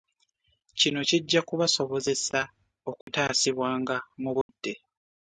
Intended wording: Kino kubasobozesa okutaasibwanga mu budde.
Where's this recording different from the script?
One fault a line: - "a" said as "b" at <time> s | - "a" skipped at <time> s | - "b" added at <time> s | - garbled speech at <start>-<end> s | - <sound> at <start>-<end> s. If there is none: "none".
- "kijja" added at 1.1 s
- dropout at 3.0-3.1 s
- dropout at 4.4-4.5 s